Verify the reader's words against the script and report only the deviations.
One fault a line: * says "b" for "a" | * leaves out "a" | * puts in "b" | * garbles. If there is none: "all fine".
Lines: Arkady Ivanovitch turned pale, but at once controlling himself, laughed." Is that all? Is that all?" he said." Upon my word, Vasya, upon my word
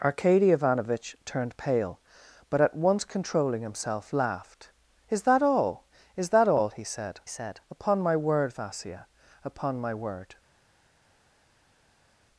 * puts in "said"